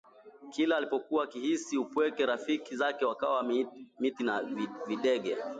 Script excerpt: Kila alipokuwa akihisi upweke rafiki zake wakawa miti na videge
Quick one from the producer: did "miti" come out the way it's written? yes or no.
yes